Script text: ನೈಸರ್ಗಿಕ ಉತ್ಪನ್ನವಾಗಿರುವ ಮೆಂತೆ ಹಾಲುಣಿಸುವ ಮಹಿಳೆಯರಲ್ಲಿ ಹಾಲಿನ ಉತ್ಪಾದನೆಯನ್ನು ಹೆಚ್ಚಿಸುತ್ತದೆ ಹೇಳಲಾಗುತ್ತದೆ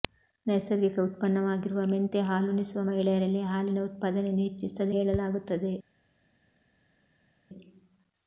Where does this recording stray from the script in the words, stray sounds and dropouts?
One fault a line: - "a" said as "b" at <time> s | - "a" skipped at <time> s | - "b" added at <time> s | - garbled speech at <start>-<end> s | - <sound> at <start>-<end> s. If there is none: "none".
none